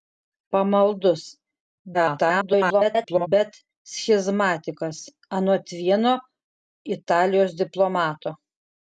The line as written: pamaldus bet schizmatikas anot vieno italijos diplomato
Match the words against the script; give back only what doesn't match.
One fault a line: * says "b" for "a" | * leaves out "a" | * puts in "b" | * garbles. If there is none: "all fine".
* garbles